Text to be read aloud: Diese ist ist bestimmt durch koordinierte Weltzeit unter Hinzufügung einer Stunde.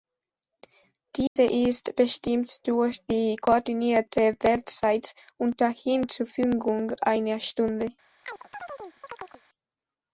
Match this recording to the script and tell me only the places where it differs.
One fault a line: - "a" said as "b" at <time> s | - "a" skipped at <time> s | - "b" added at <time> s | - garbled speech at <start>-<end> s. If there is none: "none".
- "ist" skipped at 1.9 s
- "die" added at 3.0 s